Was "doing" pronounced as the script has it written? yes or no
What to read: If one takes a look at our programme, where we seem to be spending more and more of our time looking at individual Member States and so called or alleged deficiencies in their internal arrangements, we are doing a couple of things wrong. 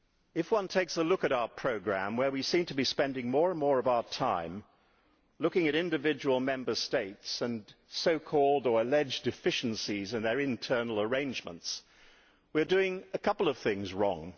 yes